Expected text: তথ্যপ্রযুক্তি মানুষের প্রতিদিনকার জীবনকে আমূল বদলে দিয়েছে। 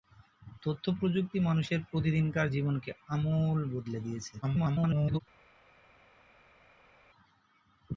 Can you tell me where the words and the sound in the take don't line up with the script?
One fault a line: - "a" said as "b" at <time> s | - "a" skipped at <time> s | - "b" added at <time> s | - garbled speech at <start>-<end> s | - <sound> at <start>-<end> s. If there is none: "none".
- garbled speech at 4.4-5.2 s